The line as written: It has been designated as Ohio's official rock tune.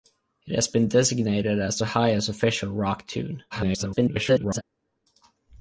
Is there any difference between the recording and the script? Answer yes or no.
yes